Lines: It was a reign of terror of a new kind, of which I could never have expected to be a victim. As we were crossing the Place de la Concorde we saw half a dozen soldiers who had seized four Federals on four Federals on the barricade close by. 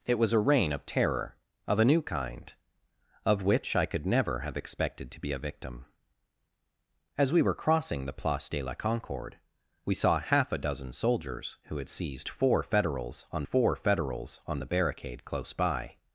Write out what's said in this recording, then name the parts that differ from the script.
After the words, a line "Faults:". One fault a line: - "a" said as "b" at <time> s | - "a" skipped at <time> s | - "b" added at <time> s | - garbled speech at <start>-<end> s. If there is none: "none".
It was a reign of terror of a new kind, of which I could never have expected to be a victim. As we were crossing the Place de la Concorde we saw half a dozen soldiers who had seized four Federals on four Federals on the barricade close by.
Faults:
none